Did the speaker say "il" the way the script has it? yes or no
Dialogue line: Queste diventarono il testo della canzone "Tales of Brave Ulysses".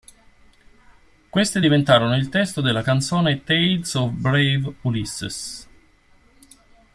yes